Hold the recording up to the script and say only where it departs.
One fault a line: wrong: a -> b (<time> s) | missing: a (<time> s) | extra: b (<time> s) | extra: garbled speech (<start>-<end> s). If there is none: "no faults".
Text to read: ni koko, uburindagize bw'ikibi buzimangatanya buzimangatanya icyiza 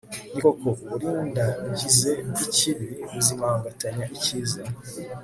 missing: buzimangatanya (4.0 s)